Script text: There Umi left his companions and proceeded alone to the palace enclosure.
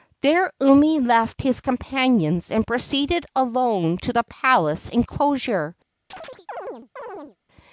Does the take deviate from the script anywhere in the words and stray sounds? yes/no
yes